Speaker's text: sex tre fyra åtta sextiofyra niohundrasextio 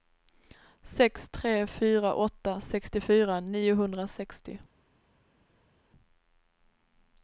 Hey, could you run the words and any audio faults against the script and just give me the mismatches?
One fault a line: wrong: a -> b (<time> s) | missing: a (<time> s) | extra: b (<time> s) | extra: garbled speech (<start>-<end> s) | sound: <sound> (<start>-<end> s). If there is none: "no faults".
no faults